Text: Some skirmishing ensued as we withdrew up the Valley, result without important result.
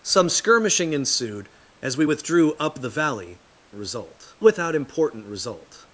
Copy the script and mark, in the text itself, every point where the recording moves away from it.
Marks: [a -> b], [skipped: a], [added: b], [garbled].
Some skirmishing ensued as we withdrew up the Valley, result without important result.